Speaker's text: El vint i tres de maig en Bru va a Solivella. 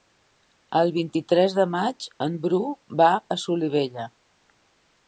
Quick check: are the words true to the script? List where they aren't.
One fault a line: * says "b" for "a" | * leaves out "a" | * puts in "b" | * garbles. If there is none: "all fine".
all fine